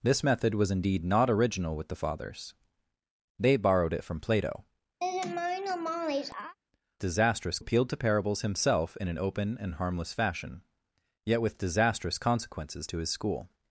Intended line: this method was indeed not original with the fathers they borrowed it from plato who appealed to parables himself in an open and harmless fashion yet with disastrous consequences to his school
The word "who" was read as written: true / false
false